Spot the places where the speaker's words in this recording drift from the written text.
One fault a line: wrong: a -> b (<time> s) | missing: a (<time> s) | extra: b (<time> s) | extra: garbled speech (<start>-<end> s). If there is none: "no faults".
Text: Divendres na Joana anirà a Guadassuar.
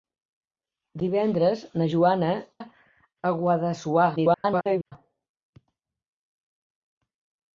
missing: anirà (2.3 s)
extra: garbled speech (4.2-4.9 s)